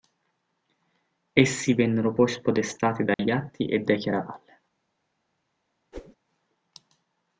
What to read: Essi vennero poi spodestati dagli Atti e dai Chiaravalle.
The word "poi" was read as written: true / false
true